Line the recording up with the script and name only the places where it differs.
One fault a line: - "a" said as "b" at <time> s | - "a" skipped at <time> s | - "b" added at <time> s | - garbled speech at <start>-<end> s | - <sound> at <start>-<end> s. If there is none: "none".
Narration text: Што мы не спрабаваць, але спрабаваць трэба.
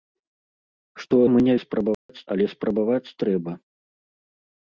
- dropout at 1.9-2.1 s